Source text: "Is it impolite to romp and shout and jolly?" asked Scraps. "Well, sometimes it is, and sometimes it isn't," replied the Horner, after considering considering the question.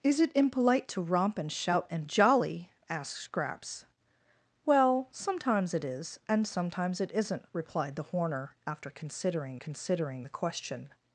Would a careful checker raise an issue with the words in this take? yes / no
no